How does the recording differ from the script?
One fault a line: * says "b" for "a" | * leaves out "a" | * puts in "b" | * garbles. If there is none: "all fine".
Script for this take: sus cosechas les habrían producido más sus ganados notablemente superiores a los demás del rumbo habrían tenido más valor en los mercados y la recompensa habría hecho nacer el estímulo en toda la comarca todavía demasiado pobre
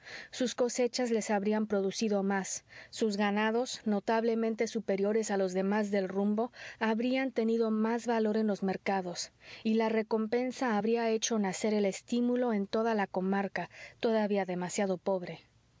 all fine